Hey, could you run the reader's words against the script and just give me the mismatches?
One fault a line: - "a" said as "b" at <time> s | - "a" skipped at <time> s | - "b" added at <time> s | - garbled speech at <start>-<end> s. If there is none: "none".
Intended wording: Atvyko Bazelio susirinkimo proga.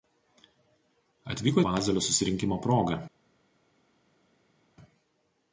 none